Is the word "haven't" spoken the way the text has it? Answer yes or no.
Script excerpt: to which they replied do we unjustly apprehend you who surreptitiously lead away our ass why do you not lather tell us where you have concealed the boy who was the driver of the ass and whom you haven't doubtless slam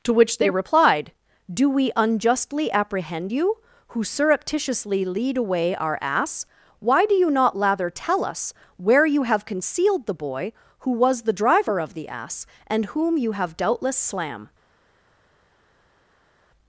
no